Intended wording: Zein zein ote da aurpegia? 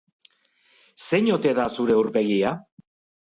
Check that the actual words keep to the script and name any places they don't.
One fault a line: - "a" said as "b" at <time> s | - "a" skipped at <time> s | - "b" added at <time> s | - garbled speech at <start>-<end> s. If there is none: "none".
- "zein" skipped at 1.3 s
- "zure" added at 1.8 s